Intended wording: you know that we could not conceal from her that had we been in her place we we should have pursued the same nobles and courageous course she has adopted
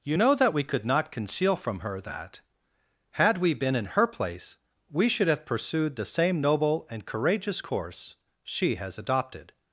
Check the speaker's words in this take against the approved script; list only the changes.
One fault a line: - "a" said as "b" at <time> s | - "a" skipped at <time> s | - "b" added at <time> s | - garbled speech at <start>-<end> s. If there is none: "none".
- "we" skipped at 5.1 s
- "nobles" said as "noble" at 6.4 s